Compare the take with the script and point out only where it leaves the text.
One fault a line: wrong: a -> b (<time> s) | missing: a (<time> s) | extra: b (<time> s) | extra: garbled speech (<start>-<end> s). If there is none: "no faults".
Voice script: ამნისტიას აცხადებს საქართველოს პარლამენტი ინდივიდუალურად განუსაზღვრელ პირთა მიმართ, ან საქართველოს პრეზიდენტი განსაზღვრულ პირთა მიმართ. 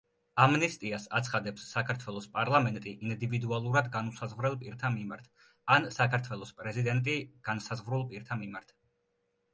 no faults